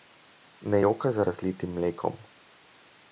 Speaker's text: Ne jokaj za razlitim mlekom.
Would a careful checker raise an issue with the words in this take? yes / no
no